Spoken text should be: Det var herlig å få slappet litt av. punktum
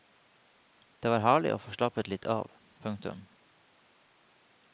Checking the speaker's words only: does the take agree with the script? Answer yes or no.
yes